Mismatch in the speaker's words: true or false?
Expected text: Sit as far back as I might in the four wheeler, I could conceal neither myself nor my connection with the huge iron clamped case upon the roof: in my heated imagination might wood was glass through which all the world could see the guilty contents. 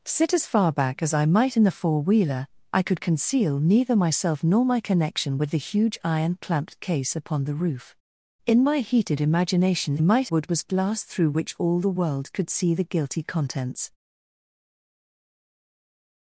false